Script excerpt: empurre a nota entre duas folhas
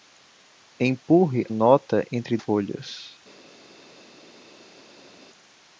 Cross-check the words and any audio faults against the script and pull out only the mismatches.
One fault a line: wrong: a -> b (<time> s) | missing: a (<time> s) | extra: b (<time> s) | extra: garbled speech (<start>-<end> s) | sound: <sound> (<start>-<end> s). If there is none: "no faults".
missing: a (1.4 s)
missing: duas (2.4 s)